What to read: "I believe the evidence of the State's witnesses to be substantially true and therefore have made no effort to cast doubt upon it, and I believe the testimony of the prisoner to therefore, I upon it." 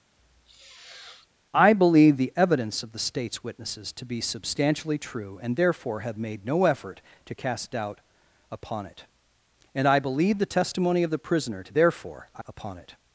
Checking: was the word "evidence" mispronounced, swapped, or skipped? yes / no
no